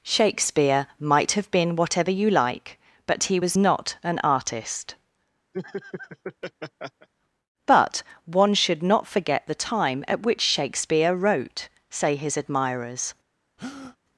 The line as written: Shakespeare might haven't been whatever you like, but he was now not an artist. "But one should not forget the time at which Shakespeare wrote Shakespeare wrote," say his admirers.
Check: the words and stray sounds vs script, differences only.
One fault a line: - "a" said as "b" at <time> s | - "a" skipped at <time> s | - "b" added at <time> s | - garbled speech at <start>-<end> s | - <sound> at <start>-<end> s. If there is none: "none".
- "haven't" said as "have" at 1.3 s
- "now" skipped at 3.6 s
- laugh at 5.5-7.1 s
- "Shakespeare wrote" skipped at 11.7 s
- breath at 13.6-14.0 s